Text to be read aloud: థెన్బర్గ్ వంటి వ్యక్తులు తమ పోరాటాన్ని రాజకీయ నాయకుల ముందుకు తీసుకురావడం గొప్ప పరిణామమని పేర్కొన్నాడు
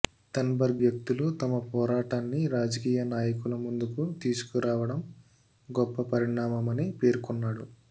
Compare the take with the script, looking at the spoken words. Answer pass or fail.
fail